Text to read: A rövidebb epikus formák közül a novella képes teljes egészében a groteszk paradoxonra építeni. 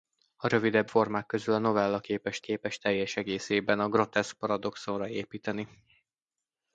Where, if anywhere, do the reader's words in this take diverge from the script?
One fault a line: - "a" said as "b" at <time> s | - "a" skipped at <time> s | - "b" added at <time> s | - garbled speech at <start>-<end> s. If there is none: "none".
- "epikus" skipped at 0.9 s
- "képes" added at 2.4 s